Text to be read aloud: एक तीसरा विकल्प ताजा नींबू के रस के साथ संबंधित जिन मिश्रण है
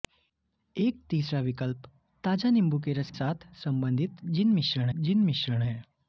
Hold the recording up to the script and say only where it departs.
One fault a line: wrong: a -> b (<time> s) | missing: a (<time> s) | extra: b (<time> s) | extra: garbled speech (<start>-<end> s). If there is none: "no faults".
missing: के (3.1 s)
extra: जिन मिश्रण (4.9 s)